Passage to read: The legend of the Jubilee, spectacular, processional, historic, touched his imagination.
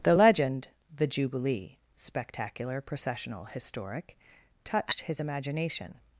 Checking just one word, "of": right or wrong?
wrong